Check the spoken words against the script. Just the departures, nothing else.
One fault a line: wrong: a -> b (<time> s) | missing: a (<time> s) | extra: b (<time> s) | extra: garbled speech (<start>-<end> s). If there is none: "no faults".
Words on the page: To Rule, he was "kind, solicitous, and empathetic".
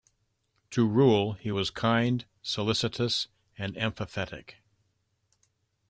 no faults